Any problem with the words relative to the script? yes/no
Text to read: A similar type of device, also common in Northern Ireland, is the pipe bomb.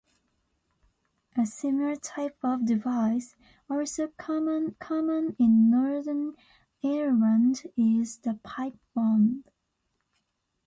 yes